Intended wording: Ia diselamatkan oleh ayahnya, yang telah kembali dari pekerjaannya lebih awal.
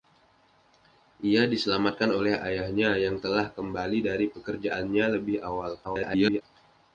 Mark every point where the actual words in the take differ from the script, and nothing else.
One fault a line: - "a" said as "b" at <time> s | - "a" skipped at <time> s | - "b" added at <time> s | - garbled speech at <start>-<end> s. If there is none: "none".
- garbled speech at 5.8-6.4 s